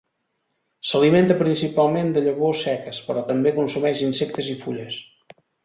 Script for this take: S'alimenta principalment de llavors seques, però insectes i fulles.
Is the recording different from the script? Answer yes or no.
yes